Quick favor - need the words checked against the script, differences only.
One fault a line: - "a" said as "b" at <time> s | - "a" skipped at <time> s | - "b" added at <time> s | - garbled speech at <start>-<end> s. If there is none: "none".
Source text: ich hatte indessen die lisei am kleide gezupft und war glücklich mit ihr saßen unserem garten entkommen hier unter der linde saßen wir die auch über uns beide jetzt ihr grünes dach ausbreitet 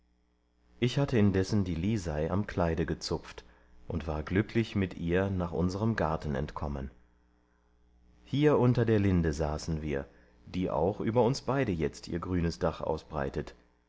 - "saßen" said as "nach" at 5.3 s